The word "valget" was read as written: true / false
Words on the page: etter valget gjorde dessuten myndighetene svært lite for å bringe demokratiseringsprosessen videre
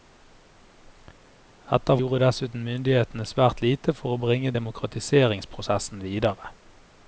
false